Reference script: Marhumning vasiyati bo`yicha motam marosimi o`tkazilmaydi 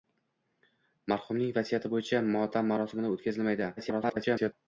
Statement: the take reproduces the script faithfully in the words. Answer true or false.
false